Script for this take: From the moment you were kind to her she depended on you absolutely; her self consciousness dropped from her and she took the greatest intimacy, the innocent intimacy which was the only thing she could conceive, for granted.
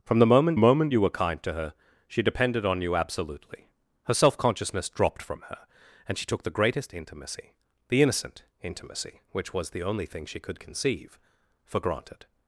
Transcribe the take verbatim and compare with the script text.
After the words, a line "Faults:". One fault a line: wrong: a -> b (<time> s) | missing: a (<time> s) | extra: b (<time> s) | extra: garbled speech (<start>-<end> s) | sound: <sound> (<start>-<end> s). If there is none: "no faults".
From the moment moment you were kind to her she depended on you absolutely; her self consciousness dropped from her and she took the greatest intimacy, the innocent intimacy which was the only thing she could conceive, for granted.
Faults:
extra: moment (0.6 s)